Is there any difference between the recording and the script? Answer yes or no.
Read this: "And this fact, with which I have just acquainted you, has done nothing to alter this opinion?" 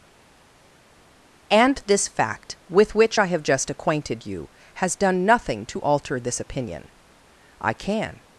yes